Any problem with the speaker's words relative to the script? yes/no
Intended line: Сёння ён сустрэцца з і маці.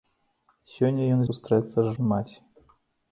no